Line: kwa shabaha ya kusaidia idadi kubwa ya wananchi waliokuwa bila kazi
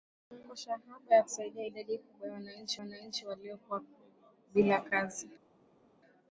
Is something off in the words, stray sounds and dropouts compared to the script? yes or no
yes